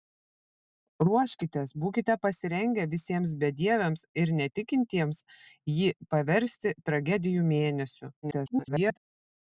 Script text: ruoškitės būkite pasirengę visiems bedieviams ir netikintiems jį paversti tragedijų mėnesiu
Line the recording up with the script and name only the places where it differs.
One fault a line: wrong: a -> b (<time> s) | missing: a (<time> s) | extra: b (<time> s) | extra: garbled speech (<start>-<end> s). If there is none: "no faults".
extra: garbled speech (8.2-9.0 s)